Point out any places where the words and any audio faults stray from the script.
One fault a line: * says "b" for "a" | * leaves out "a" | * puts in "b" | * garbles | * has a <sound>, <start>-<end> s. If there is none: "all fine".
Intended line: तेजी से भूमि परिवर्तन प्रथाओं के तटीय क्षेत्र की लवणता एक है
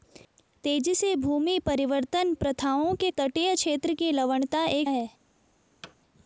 * has a thud, 5.8-6.0 s